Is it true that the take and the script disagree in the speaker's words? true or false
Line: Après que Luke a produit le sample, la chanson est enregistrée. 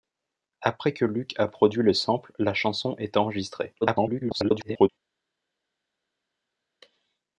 true